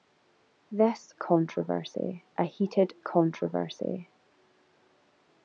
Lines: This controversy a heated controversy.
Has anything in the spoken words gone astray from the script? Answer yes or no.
no